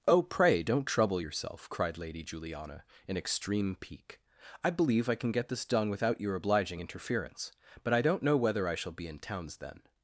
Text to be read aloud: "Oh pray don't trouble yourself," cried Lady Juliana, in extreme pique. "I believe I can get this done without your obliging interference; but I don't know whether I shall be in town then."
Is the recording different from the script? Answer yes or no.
yes